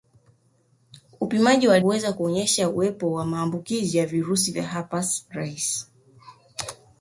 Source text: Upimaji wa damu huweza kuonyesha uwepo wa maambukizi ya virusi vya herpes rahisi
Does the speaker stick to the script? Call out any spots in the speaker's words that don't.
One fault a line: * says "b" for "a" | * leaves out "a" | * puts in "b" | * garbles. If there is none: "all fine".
* leaves out "damu"